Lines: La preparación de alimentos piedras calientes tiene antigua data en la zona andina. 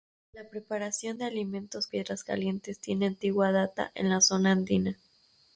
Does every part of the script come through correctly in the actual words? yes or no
yes